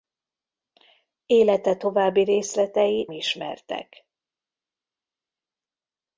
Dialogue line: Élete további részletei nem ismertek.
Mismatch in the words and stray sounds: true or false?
true